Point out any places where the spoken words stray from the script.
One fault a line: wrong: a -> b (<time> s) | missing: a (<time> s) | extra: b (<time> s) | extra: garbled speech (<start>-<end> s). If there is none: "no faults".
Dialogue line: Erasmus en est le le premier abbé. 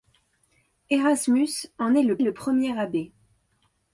no faults